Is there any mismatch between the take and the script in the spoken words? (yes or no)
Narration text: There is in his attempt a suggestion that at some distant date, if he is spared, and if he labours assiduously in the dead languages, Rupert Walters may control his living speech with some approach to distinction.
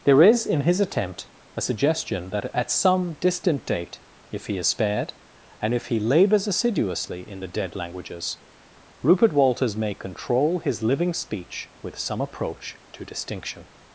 no